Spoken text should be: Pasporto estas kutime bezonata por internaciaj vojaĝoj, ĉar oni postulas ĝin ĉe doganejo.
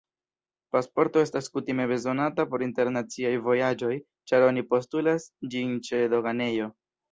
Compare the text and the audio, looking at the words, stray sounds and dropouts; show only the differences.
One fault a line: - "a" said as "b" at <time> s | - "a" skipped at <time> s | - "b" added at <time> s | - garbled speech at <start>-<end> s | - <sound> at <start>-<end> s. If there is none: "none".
none